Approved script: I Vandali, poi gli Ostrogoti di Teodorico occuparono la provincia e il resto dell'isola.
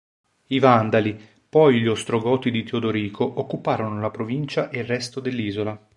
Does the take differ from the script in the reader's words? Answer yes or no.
no